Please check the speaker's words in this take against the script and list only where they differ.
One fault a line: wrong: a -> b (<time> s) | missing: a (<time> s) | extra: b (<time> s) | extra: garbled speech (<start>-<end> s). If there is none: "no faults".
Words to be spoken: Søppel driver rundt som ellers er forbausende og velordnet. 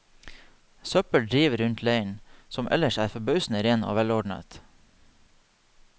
extra: leiren (1.8 s)
extra: ren (3.7 s)